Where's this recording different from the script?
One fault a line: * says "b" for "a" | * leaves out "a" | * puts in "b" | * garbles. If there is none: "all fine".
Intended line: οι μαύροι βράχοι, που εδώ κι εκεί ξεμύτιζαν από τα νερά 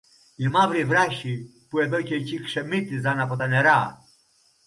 all fine